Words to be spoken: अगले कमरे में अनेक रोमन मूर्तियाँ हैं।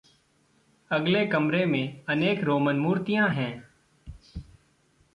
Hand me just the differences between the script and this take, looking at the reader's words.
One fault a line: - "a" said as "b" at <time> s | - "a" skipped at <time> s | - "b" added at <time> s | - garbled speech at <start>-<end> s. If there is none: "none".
none